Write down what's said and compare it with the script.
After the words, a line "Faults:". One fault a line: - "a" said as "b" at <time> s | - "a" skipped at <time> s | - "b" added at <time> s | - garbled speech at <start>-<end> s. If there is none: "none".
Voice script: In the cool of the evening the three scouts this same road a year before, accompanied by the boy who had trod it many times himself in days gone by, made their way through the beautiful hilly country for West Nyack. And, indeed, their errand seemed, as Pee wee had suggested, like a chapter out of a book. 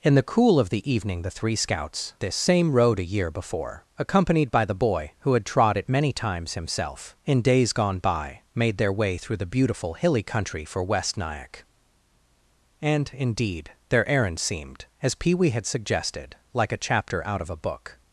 In the cool of the evening the three scouts this same road a year before, accompanied by the boy who had trod it many times himself in days gone by, made their way through the beautiful hilly country for West Nyack. And, indeed, their errand seemed, as Pee wee had suggested, like a chapter out of a book.
Faults:
none